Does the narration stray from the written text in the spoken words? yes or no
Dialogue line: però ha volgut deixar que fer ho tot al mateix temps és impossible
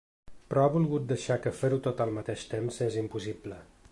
no